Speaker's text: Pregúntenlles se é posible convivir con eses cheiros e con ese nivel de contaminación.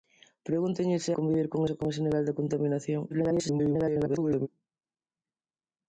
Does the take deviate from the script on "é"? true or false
true